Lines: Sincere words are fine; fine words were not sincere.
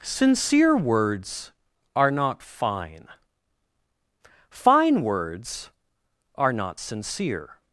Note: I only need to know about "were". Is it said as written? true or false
false